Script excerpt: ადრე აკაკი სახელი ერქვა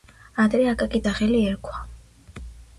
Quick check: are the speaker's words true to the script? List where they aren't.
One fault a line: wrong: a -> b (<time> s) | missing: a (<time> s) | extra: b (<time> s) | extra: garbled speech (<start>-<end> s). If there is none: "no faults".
no faults